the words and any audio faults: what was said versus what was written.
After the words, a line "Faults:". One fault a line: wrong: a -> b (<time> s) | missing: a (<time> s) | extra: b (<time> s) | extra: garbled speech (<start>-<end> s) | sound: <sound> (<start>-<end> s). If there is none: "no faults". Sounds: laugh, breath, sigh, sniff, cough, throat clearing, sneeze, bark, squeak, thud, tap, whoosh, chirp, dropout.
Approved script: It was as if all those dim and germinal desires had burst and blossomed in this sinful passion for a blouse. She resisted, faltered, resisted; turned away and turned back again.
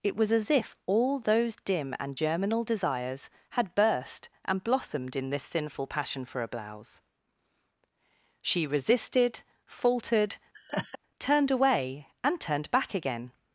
It was as if all those dim and germinal desires had burst and blossomed in this sinful passion for a blouse. She resisted, faltered; turned away and turned back again.
Faults:
missing: resisted (10.4 s)
sound: laugh (10.5-11.0 s)